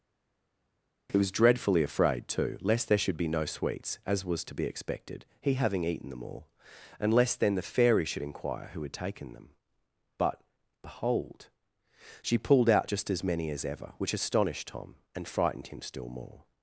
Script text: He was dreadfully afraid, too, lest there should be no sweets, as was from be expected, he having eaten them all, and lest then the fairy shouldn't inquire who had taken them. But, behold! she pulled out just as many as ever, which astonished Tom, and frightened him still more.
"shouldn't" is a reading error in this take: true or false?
true